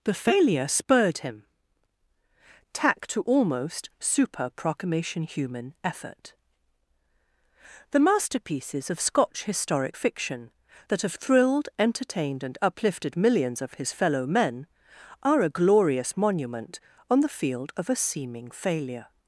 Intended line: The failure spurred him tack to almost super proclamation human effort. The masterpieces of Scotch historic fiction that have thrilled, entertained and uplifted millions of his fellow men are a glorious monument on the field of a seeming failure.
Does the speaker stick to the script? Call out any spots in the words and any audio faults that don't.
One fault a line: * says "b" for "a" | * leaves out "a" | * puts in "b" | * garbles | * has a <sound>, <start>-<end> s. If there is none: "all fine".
all fine